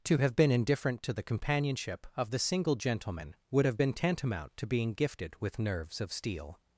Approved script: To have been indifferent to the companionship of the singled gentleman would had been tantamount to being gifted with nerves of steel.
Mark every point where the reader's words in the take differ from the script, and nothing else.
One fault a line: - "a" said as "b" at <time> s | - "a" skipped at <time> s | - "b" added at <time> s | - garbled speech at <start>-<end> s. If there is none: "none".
- "singled" said as "single" at 2.4 s
- "had" said as "have" at 3.6 s